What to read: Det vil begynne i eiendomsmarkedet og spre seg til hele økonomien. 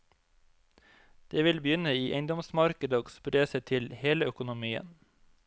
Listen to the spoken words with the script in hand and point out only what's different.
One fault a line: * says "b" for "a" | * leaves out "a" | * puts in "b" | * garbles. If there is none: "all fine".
all fine